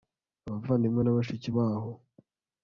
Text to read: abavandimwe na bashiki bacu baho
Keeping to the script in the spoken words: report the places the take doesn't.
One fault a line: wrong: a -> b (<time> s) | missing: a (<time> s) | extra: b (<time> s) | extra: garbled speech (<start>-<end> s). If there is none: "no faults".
missing: bacu (1.5 s)